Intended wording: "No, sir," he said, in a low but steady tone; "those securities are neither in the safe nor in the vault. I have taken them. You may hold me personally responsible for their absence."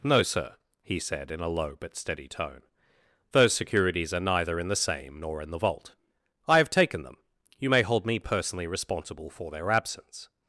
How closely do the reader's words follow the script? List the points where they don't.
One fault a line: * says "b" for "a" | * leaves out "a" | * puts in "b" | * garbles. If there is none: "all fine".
* says "same" for "safe"